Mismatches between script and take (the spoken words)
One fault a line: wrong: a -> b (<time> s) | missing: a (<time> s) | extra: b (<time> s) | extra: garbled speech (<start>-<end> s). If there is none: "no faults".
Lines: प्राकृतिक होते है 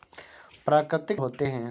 no faults